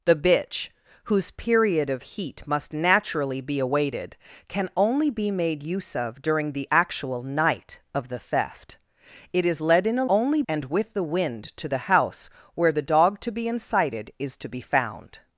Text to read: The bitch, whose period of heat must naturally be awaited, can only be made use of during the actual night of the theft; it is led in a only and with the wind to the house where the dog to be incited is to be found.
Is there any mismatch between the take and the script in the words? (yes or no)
no